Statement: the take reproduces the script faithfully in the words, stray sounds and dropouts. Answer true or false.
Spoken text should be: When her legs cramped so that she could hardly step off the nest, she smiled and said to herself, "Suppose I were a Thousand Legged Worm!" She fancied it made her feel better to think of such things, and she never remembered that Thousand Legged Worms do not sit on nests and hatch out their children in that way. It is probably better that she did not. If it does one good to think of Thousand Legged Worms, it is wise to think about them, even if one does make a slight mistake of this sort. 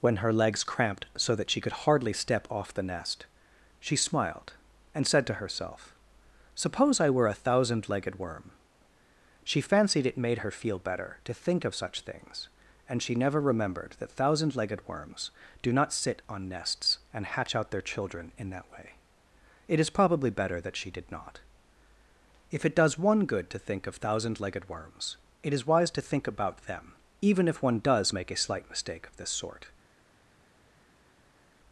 true